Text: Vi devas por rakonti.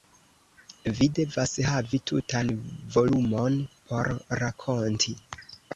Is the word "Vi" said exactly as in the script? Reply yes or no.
yes